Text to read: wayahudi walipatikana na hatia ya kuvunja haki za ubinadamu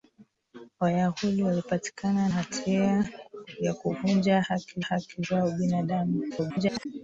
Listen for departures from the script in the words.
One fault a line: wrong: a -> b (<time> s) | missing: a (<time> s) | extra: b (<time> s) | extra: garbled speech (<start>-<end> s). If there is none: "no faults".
missing: na (2.3 s)
extra: haki (4.8 s)
extra: garbled speech (6.3-6.9 s)